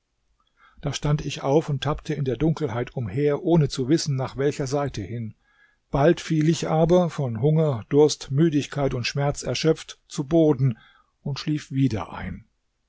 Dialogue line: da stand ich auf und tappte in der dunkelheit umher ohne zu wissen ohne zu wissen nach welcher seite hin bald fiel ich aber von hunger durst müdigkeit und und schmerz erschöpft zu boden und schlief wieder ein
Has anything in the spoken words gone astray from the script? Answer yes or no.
yes